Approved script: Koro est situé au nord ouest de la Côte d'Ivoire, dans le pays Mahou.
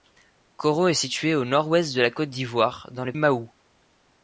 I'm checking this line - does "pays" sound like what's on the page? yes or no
no